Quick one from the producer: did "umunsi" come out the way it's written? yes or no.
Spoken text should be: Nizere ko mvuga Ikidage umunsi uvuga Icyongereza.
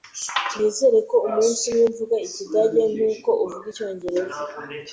no